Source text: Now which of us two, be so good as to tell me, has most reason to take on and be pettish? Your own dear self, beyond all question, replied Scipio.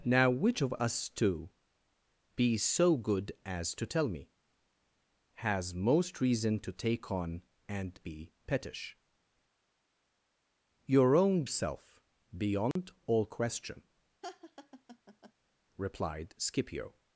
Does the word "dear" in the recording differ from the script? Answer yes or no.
yes